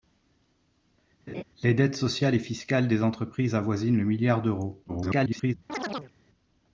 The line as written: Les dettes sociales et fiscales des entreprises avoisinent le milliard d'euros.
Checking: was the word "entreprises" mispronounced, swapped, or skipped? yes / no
no